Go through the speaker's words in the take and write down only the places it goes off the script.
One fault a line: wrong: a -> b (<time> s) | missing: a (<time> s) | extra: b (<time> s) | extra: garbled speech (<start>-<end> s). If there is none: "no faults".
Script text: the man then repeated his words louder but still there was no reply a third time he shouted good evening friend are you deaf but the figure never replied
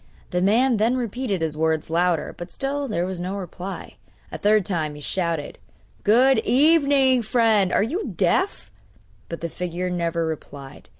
no faults